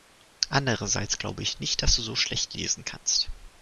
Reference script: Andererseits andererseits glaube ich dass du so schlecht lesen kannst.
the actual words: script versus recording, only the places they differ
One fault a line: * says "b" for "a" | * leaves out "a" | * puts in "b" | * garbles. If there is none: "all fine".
* leaves out "andererseits"
* puts in "nicht"